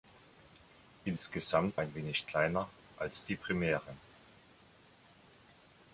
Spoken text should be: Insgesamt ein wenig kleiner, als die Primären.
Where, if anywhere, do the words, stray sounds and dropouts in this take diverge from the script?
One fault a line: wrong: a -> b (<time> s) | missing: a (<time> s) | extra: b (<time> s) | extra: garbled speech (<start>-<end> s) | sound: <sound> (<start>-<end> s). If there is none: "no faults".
no faults